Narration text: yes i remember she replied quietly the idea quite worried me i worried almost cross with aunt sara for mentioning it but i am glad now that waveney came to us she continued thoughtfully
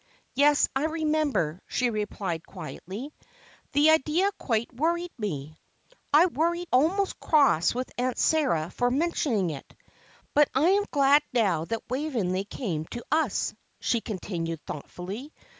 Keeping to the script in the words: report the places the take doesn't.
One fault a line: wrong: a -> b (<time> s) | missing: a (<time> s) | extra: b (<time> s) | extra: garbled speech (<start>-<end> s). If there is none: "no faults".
no faults